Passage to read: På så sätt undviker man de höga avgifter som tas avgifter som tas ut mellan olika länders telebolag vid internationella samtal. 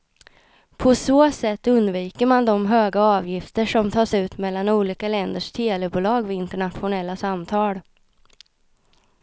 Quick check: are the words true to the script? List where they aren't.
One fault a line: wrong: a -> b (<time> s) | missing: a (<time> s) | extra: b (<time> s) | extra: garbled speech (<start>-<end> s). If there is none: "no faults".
missing: avgifter som tas (4.2 s)